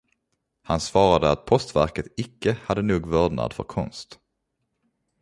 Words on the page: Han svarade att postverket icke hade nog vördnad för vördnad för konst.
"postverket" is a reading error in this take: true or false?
false